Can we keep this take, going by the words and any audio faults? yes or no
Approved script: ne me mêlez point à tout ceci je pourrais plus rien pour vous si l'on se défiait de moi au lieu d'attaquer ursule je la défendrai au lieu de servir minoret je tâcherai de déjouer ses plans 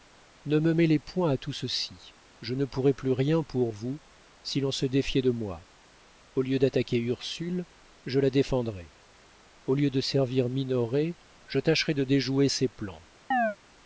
no